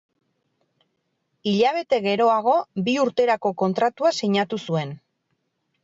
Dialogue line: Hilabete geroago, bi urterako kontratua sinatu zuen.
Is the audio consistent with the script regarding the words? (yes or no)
yes